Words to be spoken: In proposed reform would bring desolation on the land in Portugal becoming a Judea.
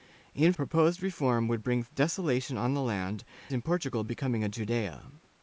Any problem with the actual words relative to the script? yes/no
no